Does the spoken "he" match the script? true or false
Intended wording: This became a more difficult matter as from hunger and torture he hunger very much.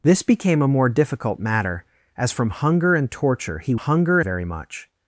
true